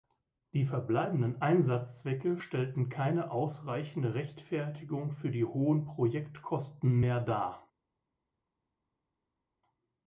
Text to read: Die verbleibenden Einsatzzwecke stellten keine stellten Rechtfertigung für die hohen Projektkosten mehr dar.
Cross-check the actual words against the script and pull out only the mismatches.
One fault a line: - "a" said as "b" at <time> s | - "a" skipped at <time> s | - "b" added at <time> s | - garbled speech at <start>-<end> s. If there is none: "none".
- "stellten" said as "ausreichende" at 3.3 s